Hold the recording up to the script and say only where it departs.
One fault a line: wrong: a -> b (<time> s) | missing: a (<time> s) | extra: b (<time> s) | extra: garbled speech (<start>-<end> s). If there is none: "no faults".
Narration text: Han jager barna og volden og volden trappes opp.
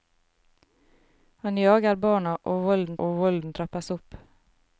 no faults